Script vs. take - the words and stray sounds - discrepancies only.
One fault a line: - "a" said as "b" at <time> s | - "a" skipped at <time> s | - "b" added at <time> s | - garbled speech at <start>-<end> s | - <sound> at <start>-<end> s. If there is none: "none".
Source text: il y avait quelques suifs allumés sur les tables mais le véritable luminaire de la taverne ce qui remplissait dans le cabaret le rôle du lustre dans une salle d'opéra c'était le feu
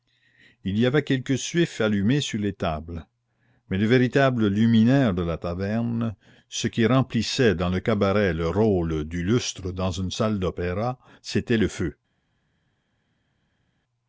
none